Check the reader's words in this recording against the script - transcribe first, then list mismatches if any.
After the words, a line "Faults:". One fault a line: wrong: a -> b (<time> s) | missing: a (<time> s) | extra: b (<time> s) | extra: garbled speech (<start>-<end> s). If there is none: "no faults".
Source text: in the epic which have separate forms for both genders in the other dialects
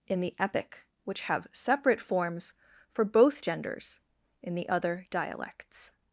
in the epic which have separate forms for both genders in the other dialects
Faults:
no faults